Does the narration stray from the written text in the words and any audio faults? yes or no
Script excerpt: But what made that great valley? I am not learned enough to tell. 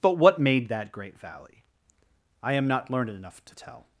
no